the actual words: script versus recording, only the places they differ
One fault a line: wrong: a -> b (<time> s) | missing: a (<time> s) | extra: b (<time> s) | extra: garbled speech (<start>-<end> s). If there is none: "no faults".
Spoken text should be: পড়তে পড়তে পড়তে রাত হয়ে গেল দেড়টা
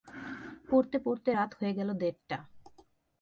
missing: পড়তে (1.3 s)